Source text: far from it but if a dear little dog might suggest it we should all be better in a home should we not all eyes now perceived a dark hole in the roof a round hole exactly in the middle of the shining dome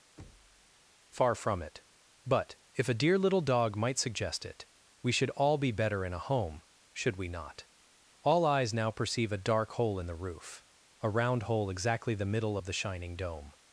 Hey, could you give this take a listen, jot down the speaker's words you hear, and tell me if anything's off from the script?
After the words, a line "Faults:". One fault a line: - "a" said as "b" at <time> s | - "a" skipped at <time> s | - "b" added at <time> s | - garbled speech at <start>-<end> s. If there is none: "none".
far from it but if a dear little dog might suggest it we should all be better in a home should we not all eyes now perceive a dark hole in the roof a round hole exactly the middle of the shining dome
Faults:
- "perceived" said as "perceive" at 8.9 s
- "in" skipped at 12.1 s